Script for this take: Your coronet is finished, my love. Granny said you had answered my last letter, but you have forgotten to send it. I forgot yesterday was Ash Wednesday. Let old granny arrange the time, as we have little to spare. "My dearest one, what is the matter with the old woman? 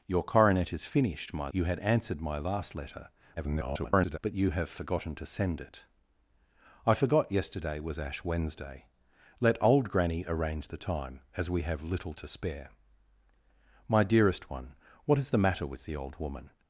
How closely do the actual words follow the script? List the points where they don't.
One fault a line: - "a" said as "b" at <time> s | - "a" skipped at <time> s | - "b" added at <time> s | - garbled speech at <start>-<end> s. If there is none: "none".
- "love Granny said" skipped at 1.5 s
- garbled speech at 3.4-4.2 s